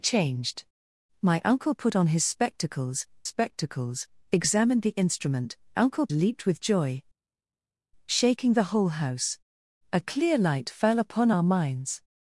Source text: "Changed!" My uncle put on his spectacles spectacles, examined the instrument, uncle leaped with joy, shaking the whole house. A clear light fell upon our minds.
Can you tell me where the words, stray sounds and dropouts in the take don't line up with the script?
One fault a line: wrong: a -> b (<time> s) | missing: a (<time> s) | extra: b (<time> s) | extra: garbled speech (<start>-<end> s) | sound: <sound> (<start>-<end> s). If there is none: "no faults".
no faults